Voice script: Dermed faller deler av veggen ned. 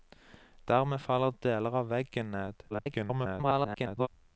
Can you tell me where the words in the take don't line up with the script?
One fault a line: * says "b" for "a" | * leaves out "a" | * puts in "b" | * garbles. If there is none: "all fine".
* garbles